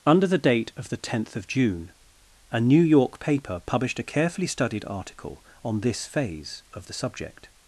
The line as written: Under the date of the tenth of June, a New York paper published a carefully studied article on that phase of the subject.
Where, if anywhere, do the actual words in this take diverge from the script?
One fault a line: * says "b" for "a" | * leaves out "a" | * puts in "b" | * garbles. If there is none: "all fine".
* says "this" for "that"